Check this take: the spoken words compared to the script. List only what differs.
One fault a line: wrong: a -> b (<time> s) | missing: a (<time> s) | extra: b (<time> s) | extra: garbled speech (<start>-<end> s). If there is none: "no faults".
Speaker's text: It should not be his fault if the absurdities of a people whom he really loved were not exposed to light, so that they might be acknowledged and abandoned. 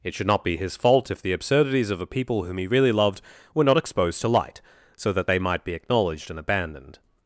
no faults